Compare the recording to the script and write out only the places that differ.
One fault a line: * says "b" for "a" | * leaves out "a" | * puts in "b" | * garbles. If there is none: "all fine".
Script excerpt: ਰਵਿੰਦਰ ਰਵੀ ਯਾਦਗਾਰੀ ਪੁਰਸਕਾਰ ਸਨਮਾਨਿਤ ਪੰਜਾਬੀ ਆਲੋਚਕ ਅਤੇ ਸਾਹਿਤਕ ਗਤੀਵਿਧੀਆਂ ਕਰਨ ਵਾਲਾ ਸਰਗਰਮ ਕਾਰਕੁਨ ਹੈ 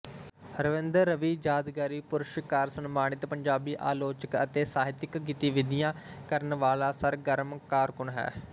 all fine